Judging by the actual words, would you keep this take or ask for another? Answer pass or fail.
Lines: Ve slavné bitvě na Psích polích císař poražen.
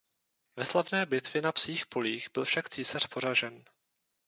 fail